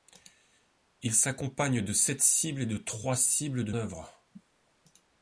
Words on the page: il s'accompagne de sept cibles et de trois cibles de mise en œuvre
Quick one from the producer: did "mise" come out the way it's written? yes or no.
no